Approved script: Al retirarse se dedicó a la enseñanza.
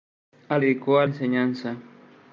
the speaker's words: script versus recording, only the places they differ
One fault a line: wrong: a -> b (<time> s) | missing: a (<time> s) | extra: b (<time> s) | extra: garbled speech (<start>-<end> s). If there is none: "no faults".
missing: retirarse se (0.6 s)
missing: la (1.1 s)